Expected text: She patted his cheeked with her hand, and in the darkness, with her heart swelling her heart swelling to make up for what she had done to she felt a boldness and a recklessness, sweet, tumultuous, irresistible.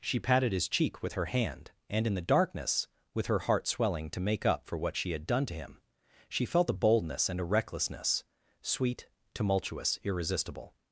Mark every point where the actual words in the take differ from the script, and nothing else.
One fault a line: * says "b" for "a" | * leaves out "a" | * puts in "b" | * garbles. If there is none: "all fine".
* says "cheek" for "cheeked"
* leaves out "her heart swelling"
* puts in "him"